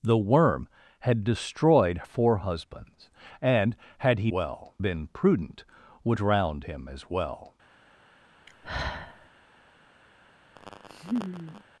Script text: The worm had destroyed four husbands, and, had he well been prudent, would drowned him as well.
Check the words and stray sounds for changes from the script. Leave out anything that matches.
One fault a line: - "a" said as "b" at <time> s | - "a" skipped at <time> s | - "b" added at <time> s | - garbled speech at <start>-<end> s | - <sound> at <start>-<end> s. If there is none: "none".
- sigh at 8.5-9.3 s
- laugh at 10.6-11.6 s